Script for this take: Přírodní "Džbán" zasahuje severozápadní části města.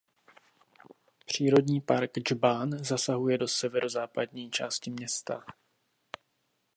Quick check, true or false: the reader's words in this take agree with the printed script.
false